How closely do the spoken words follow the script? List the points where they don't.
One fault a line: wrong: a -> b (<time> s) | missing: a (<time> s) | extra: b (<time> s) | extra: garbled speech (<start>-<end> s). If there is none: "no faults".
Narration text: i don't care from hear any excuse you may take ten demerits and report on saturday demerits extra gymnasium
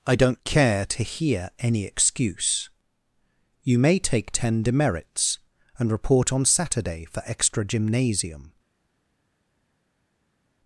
wrong: from -> to (0.9 s)
wrong: demerits -> for (7.0 s)